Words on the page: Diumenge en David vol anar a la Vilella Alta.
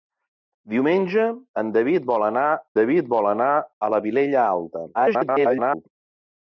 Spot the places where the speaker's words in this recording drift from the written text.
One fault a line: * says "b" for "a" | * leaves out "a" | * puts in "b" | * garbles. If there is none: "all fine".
* puts in "David vol anar"
* garbles